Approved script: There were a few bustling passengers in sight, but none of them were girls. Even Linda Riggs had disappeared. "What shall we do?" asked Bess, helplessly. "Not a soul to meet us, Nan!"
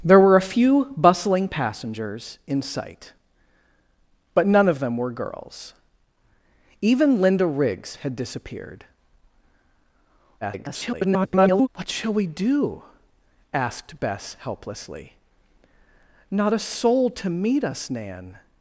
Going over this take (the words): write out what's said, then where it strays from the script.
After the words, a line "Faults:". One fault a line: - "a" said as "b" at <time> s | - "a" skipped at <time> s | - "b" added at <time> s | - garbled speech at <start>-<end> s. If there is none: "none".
There were a few bustling passengers in sight, but none of them were girls. Even Linda Riggs had disappeared. [garbled] "What shall we do?" asked Bess, helplessly. "Not a soul to meet us, Nan!"
Faults:
- garbled speech at 10.4-11.7 s